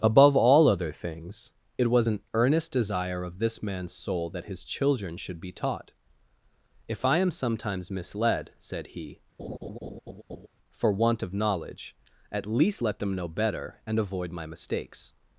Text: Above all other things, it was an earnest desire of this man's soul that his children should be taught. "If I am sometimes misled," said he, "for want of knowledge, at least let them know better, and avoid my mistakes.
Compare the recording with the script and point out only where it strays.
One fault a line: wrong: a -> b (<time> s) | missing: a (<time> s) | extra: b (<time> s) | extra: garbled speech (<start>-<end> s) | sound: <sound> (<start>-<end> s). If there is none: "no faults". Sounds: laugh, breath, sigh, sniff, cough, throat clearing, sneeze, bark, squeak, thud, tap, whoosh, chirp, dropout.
sound: laugh (9.4-10.5 s)